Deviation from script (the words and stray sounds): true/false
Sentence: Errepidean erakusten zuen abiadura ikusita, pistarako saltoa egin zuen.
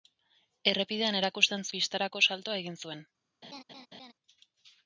true